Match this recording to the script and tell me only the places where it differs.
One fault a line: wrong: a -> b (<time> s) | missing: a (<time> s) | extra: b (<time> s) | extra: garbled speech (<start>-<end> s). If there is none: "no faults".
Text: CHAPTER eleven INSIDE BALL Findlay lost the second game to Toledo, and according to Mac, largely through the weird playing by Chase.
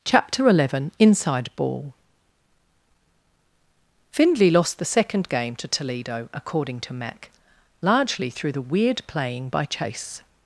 missing: and (6.3 s)